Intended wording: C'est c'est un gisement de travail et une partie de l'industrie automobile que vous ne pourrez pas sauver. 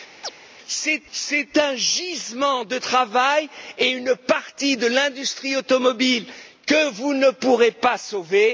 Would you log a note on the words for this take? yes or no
no